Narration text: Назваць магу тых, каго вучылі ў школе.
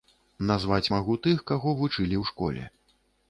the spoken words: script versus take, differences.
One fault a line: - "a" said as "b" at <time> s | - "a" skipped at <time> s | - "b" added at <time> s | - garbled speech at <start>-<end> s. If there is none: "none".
none